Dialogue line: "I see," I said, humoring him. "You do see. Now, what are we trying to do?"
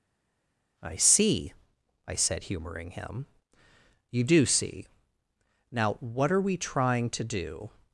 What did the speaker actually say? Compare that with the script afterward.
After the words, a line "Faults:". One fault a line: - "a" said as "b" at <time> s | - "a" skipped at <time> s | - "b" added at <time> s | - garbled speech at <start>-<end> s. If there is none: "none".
"I see," I said, humoring him. "You do see. Now, what are we trying to do?"
Faults:
none